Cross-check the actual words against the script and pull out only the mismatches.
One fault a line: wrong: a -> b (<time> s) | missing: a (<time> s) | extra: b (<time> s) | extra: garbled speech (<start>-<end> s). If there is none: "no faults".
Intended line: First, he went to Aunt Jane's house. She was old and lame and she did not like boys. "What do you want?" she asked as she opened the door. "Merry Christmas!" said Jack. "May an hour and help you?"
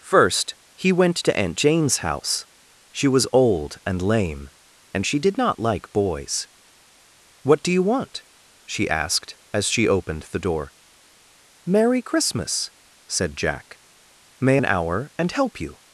no faults